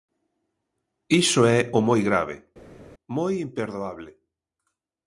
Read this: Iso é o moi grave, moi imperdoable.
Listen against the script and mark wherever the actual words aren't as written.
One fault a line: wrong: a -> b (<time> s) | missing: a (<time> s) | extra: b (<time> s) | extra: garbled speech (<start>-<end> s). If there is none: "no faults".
no faults